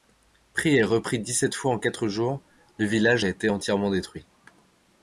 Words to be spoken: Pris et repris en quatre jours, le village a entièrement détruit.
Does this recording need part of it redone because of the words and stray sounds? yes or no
yes